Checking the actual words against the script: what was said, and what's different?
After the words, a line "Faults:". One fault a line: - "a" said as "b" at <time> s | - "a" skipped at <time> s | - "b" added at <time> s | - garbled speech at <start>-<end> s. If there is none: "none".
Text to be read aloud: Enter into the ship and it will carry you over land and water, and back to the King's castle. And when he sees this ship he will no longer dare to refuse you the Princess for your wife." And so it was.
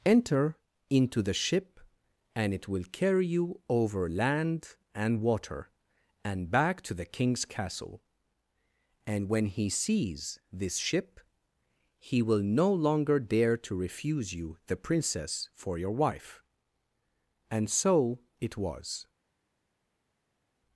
Enter into the ship and it will carry you over land and water, and back to the King's castle. And when he sees this ship he will no longer dare to refuse you the Princess for your wife." And so it was.
Faults:
none